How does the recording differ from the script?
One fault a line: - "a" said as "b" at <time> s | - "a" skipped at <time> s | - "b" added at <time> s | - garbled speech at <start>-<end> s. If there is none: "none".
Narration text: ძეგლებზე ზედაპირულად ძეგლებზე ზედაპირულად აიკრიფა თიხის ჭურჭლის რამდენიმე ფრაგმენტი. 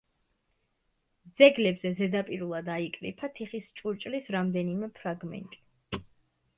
- "ძეგლებზე ზედაპირულად" skipped at 2.7 s